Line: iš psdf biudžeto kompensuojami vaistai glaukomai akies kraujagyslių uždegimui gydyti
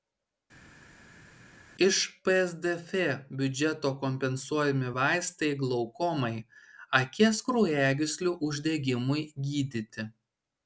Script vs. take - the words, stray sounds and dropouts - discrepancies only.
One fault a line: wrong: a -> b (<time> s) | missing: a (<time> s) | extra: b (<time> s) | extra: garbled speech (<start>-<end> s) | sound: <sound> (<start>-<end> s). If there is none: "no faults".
no faults